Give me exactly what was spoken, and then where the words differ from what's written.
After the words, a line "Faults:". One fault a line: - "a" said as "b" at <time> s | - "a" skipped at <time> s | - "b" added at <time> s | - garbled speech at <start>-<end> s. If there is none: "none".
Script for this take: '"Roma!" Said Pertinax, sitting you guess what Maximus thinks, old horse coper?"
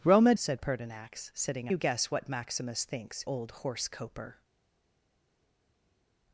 '"Roma!" Said Pertinax, sitting you guess what Maximus thinks, old horse coper?"
Faults:
none